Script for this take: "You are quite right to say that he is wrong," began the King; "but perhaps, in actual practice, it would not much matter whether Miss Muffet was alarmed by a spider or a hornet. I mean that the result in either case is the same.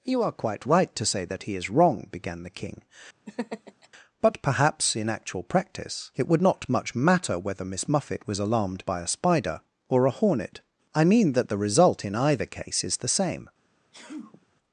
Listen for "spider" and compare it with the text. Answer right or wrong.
right